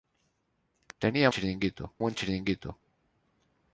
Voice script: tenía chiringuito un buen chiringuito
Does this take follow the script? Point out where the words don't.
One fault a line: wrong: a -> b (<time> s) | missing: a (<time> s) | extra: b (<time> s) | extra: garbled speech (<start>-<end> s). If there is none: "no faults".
no faults